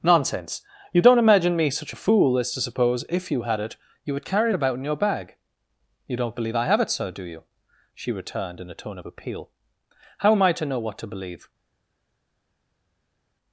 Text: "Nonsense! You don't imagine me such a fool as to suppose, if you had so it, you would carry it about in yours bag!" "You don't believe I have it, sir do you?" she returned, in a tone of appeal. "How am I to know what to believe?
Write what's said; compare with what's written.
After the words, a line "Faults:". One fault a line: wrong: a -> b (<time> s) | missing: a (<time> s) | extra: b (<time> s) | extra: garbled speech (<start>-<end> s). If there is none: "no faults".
"Nonsense! You don't imagine me such a fool as to suppose, if you had it, you would carry it about in your bag!" "You don't believe I have it, sir do you?" she returned, in a tone of appeal. "How am I to know what to believe?
Faults:
missing: so (3.6 s)
wrong: yours -> your (4.8 s)